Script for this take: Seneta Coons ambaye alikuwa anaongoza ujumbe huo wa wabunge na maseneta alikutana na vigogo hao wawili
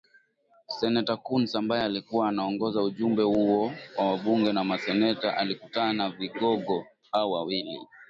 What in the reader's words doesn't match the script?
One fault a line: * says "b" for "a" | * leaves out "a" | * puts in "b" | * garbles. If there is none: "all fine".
all fine